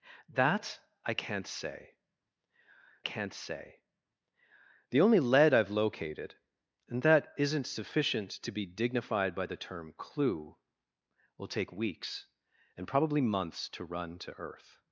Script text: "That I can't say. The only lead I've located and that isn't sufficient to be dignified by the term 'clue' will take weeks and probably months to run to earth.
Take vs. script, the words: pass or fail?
fail